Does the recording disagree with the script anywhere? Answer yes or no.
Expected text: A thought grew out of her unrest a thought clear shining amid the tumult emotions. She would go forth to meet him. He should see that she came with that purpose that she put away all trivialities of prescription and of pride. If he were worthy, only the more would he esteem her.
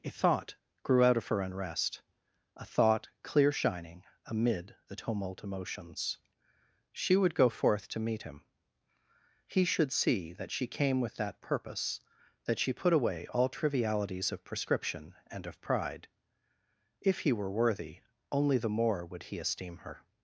no